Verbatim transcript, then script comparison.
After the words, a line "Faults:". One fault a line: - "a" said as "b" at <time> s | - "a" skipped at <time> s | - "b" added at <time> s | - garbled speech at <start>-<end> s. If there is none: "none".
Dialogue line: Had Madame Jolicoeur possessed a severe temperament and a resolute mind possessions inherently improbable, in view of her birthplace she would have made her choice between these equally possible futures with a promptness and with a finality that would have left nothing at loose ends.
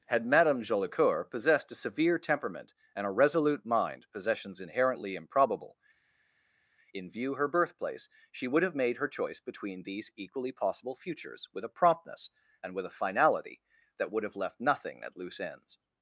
Had Madame Jolicoeur possessed a severe temperament and a resolute mind possessions inherently improbable, in view her birthplace she would have made her choice between these equally possible futures with a promptness and with a finality that would have left nothing at loose ends.
Faults:
- "of" skipped at 7.3 s